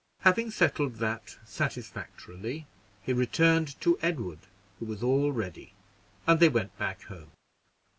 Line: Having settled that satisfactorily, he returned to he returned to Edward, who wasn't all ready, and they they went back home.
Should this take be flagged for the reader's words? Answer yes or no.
yes